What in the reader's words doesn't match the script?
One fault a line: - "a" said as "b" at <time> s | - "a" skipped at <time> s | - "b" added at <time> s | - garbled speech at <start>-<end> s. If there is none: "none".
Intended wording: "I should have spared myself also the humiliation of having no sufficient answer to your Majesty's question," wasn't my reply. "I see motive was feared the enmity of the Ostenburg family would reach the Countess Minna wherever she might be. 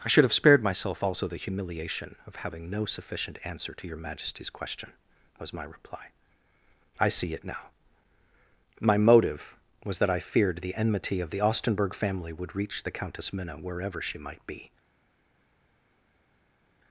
- "wasn't" said as "was" at 5.4 s
- "it now My" added at 7.3 s
- "that I" added at 10.0 s